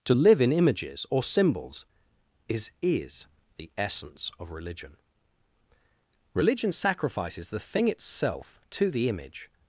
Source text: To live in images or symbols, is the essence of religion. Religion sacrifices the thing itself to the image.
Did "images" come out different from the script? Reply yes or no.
no